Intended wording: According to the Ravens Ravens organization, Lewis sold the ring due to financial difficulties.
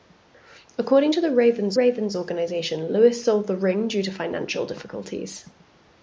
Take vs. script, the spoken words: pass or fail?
pass